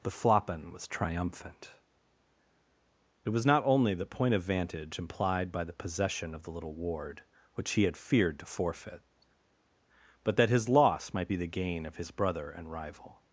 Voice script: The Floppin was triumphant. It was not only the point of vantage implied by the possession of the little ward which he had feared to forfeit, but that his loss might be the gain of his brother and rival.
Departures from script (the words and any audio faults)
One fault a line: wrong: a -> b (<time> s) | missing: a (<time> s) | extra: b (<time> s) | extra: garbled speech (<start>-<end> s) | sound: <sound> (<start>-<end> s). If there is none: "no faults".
no faults